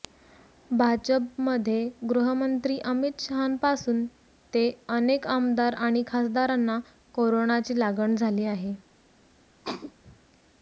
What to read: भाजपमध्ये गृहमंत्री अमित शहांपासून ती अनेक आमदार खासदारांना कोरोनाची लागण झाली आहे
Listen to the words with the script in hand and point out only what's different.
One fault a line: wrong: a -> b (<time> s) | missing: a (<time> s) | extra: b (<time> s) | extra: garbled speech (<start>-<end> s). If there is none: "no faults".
wrong: ती -> ते (4.5 s)
extra: आणि (5.8 s)